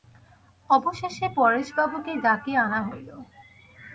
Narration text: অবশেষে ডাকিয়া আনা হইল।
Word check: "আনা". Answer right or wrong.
right